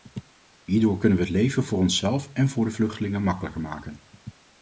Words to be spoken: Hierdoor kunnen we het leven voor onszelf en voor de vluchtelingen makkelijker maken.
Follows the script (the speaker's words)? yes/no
yes